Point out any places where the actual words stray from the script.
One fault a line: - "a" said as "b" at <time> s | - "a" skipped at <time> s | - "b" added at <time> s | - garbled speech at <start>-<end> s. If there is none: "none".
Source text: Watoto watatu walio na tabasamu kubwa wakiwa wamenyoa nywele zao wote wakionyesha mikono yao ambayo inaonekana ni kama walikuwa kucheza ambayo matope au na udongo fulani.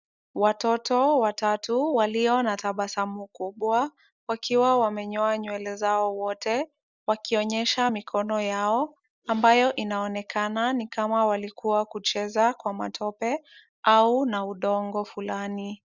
- "ambayo" said as "kwa" at 12.5 s